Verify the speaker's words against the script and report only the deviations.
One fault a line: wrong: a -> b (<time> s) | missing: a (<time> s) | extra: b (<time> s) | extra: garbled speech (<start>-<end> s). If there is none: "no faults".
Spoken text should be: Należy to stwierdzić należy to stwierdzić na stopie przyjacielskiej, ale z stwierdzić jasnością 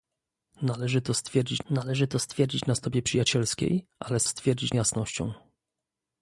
no faults